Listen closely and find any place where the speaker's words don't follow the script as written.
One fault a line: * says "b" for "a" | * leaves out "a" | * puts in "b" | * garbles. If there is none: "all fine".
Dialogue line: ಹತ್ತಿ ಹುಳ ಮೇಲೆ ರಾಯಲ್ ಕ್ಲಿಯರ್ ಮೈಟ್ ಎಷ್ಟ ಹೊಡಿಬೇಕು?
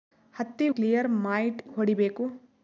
* leaves out "ಹುಳ ಮೇಲೆ ರಾಯಲ್"
* leaves out "ಎಷ್ಟ"